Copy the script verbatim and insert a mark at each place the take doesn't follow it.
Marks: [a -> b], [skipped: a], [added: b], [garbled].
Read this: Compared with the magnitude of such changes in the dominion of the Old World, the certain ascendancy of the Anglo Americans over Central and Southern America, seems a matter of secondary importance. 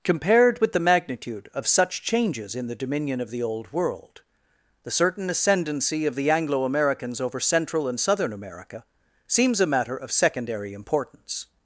Compared with the magnitude of such changes in the dominion of the Old World, the certain ascendancy of the Anglo Americans over Central and Southern America, seems a matter of secondary importance.